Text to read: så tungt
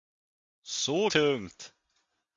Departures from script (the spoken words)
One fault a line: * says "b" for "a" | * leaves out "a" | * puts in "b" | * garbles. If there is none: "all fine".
all fine